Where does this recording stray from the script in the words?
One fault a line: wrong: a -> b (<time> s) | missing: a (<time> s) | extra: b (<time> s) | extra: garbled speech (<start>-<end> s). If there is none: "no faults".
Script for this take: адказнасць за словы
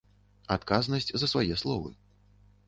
extra: свае (1.3 s)